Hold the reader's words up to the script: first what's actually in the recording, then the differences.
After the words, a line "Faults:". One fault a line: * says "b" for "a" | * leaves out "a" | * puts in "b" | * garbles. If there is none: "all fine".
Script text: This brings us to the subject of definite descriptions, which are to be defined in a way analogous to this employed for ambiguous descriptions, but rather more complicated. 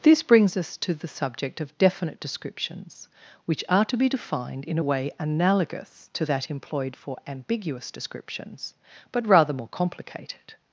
This brings us to the subject of definite descriptions, which are to be defined in a way analogous to that employed for ambiguous descriptions, but rather more complicated.
Faults:
* says "that" for "this"